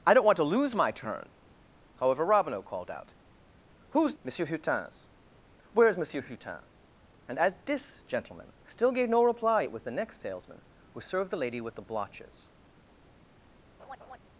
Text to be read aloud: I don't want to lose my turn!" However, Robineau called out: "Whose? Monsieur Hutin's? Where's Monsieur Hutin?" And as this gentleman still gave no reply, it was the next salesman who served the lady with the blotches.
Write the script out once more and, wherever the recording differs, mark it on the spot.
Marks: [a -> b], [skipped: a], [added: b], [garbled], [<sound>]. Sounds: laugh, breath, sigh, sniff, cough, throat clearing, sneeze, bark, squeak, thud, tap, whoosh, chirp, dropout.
I don't want to lose my turn!" However, Robineau called out: "Whose? Monsieur Hutin's? Where's Monsieur Hutin?" And as this gentleman still gave no reply, it was the next salesman who served the lady with the blotches. [laugh]